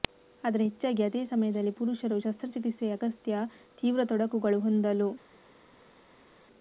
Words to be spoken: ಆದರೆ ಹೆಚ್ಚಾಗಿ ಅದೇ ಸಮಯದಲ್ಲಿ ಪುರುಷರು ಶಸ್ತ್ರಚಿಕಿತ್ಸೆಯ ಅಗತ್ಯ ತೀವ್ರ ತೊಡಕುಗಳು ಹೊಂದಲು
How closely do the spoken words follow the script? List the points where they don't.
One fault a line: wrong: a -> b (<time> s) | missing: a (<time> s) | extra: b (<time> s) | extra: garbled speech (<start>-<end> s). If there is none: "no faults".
no faults